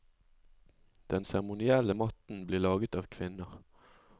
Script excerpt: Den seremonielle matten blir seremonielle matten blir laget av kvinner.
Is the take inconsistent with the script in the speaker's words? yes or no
yes